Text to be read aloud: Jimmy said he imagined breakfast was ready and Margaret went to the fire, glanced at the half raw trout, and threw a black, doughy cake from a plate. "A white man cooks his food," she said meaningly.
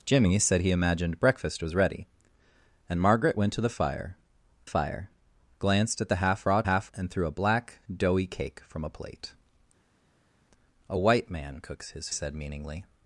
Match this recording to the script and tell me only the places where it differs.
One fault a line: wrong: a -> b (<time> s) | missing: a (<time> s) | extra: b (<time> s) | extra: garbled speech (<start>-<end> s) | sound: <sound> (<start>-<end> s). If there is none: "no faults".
extra: fire (4.6 s)
wrong: trout -> half (6.6 s)
missing: food she (12.1 s)